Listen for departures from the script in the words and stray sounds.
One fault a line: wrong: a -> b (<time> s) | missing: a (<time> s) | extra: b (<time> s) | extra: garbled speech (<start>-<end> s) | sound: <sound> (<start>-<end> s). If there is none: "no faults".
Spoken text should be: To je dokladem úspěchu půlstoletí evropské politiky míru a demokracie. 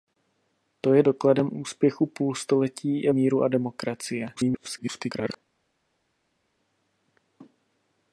missing: evropské politiky (3.1 s)
extra: garbled speech (4.3-5.4 s)